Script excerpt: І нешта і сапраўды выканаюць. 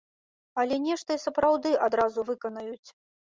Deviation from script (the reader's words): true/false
true